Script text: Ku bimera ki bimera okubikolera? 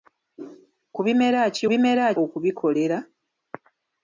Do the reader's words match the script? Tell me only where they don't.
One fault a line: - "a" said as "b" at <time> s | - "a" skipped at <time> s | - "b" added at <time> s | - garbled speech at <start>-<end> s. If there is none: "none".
none